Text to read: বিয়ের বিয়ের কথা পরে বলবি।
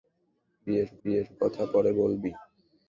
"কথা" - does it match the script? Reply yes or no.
yes